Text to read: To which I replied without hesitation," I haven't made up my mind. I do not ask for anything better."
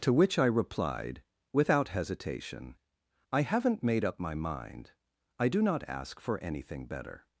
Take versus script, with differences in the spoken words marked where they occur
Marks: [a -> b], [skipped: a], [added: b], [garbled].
To which I replied without hesitation," I haven't made up my mind. I do not ask for anything better."